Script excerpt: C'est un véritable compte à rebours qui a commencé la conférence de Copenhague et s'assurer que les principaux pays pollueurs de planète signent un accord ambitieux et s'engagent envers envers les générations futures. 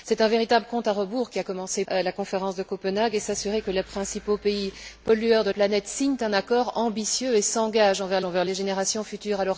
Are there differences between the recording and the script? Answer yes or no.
no